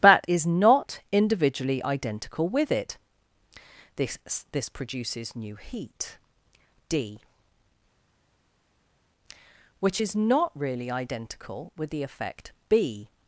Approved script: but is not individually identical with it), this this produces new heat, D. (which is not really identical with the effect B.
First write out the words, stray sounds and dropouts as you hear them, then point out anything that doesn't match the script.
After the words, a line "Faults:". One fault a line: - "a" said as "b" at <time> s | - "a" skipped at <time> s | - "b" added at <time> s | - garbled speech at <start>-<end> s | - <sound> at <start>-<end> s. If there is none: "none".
but is not individually identical with it), this this produces new heat, D. (which is not really identical with the effect B.
Faults:
none